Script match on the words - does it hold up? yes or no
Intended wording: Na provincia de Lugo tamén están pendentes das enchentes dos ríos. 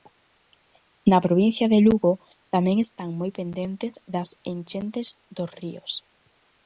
no